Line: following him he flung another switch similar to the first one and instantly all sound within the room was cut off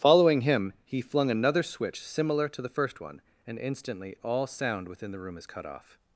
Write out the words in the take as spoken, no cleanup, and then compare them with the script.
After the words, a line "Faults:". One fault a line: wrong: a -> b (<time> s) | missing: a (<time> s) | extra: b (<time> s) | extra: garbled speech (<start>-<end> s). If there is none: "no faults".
following him he flung another switch similar to the first one and instantly all sound within the room is cut off
Faults:
wrong: was -> is (5.4 s)